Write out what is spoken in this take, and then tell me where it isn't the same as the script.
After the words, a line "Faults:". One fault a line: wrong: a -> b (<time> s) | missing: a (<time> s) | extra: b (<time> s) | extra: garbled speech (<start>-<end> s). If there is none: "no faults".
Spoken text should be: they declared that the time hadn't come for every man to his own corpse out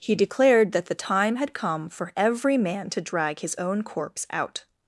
he declared that the time had come for every man to drag his own corpse out
Faults:
wrong: they -> he (0.0 s)
wrong: hadn't -> had (1.4 s)
extra: drag (3.0 s)